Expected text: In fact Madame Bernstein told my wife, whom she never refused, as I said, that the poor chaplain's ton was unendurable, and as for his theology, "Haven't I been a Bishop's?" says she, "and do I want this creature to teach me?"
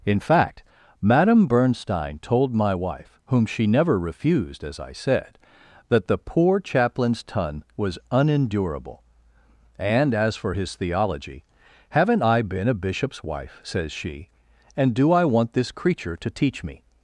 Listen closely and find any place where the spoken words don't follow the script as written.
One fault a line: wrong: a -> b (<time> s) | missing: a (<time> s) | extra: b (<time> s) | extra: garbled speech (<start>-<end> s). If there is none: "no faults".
extra: wife (13.2 s)